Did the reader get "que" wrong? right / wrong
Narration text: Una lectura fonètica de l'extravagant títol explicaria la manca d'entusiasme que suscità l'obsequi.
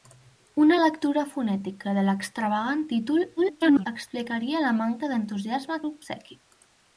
wrong